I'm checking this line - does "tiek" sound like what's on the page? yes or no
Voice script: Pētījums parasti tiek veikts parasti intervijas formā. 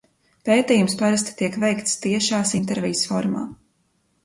yes